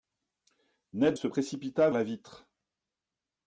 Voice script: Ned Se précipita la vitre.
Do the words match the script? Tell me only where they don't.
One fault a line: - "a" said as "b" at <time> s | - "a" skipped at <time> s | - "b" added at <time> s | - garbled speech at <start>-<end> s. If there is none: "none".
none